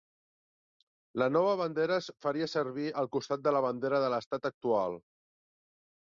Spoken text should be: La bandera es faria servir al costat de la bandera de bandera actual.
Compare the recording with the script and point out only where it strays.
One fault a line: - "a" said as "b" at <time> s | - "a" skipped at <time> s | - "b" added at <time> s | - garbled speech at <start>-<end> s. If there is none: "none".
- "nova" added at 1.3 s
- "bandera" said as "l'estat" at 4.1 s